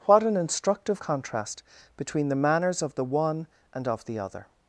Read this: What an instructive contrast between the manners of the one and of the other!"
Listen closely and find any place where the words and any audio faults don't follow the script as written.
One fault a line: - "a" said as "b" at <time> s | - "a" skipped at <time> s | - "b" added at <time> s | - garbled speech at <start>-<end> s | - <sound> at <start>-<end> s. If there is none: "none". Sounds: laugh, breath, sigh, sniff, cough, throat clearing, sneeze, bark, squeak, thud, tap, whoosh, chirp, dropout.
none